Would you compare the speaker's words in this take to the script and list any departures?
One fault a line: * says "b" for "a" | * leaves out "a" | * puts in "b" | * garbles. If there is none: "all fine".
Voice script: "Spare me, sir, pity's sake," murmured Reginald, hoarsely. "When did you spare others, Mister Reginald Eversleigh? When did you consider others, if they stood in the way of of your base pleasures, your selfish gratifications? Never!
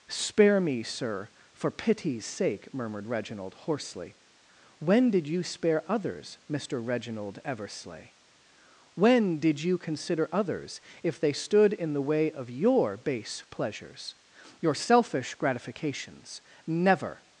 * puts in "for"
* leaves out "of"